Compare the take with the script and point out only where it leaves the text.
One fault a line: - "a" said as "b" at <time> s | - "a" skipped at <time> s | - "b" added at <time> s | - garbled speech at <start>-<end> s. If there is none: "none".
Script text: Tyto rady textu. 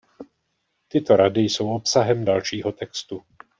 - "jsou obsahem dalšího" added at 1.4 s